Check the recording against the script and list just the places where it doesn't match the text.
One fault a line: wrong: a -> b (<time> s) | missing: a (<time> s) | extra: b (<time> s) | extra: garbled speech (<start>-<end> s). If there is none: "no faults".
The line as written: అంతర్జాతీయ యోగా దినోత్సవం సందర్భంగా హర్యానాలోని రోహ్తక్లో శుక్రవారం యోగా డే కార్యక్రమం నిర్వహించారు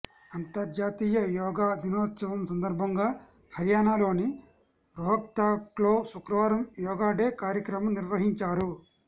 no faults